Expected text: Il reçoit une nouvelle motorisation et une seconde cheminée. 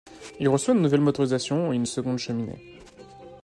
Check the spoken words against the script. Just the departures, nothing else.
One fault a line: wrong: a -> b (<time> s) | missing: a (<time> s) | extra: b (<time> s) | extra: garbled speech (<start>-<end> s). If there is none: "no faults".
no faults